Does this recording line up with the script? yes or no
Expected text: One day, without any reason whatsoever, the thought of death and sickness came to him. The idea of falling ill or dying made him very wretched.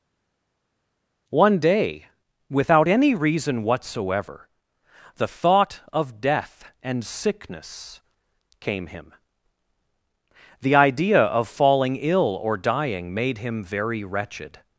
no